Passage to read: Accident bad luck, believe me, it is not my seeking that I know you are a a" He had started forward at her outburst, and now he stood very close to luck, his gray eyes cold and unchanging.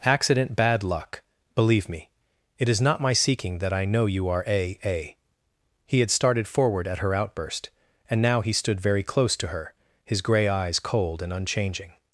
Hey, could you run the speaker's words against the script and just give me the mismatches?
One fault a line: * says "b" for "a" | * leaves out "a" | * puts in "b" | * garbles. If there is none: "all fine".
* says "her" for "luck"